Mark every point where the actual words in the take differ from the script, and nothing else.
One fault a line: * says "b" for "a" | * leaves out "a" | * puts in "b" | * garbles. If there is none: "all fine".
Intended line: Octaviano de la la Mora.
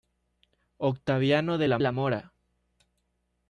all fine